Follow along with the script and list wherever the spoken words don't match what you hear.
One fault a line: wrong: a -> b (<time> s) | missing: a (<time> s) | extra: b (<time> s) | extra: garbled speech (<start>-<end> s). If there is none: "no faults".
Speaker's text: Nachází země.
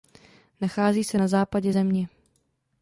extra: se na západě (1.0 s)